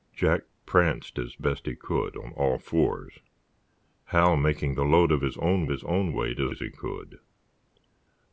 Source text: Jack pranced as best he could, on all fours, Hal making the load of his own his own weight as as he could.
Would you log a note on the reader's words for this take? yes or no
no